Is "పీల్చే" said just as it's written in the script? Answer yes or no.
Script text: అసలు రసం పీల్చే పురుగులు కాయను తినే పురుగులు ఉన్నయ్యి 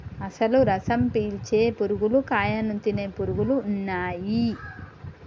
yes